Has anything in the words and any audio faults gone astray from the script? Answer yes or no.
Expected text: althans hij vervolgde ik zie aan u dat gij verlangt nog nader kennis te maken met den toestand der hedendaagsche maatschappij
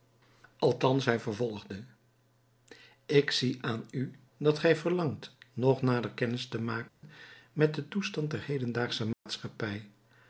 yes